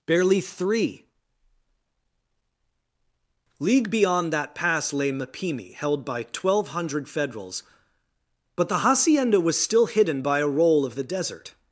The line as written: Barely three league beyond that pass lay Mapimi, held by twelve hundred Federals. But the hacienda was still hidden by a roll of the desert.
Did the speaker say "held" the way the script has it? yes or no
yes